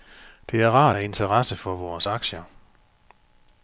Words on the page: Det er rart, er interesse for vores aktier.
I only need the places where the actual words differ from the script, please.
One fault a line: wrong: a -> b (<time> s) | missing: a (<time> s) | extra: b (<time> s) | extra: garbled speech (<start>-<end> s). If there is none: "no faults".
no faults